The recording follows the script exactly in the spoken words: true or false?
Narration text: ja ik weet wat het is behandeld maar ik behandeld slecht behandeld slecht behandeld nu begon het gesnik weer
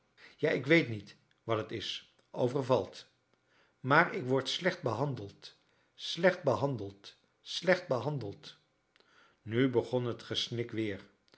false